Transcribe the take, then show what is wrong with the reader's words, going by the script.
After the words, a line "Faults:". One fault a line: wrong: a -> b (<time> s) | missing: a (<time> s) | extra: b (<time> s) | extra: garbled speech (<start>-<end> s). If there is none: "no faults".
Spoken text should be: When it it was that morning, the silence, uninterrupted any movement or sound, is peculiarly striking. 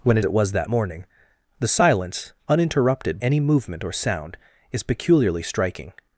When it it was that morning, the silence, uninterrupted any movement or sound, is peculiarly striking.
Faults:
no faults